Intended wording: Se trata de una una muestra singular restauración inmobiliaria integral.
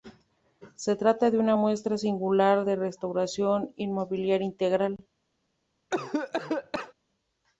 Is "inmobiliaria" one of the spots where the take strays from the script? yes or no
no